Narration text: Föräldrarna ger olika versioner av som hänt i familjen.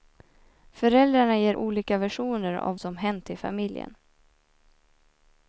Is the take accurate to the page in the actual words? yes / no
yes